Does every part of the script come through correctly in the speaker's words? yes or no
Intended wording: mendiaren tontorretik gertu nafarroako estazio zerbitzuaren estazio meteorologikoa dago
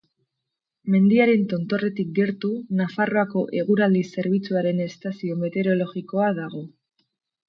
no